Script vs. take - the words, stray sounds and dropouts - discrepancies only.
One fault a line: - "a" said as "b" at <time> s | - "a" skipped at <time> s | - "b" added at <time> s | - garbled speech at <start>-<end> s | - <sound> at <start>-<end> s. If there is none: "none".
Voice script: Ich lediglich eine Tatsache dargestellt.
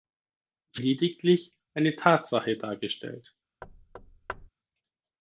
- thud at 3.6-4.5 s